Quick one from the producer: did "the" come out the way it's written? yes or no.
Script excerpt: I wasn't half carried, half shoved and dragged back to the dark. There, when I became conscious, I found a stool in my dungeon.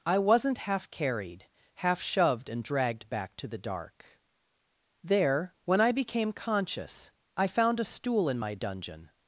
yes